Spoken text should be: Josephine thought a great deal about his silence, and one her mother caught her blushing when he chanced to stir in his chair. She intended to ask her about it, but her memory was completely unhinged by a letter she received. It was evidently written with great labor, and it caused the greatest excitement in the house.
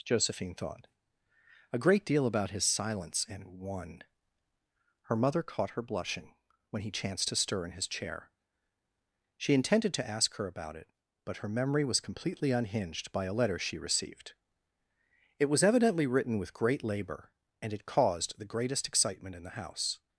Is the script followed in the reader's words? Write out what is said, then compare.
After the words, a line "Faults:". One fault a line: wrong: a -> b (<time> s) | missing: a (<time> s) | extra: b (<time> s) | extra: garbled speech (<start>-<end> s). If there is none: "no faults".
Josephine thought a great deal about his silence, and one her mother caught her blushing when he chanced to stir in his chair. She intended to ask her about it, but her memory was completely unhinged by a letter she received. It was evidently written with great labor, and it caused the greatest excitement in the house.
Faults:
no faults